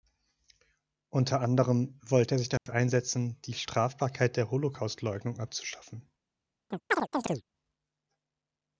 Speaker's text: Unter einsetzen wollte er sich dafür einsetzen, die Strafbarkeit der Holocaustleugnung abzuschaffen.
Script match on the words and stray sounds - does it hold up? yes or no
no